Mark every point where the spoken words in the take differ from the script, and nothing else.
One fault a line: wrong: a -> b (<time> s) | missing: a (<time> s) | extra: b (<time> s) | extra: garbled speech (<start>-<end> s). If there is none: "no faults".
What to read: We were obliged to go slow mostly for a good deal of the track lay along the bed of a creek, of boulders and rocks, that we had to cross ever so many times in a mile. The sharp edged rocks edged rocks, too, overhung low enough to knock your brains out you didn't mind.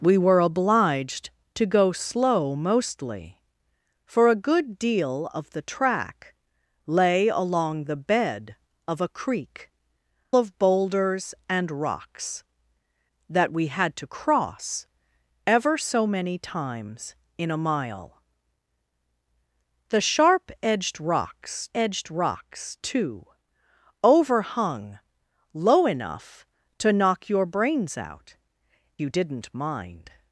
no faults